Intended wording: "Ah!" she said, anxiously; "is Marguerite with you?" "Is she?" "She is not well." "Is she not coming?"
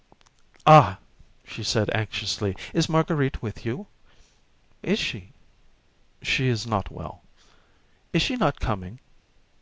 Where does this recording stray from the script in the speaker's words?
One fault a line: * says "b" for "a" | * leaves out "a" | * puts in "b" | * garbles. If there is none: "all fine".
all fine